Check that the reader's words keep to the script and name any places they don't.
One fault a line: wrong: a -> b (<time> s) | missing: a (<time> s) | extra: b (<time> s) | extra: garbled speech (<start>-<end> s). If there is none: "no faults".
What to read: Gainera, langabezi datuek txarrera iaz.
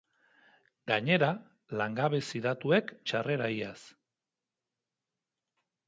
no faults